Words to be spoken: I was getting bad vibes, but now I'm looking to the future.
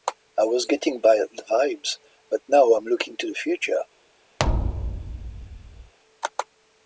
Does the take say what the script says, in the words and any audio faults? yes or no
no